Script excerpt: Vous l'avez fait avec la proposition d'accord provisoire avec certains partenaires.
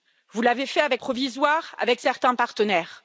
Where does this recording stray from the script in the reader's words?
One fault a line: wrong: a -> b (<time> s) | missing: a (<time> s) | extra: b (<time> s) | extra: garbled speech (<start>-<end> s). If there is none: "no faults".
missing: la proposition d'accord (1.0 s)